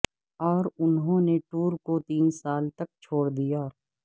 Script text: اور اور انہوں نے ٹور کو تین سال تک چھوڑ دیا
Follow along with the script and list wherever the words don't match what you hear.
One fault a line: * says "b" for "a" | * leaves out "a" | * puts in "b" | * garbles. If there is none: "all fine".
* leaves out "اور"